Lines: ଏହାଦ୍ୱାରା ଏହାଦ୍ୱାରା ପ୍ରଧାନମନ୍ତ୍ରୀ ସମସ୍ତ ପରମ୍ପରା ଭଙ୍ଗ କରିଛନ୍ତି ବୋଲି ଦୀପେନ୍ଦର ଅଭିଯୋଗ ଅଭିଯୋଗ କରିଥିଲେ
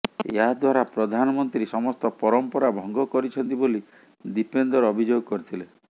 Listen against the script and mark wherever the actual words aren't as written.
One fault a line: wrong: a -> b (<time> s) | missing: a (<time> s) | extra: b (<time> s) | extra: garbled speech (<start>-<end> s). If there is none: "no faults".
missing: ଏହାଦ୍ୱାରା (0.8 s)
missing: ଅଭିଯୋଗ (5.3 s)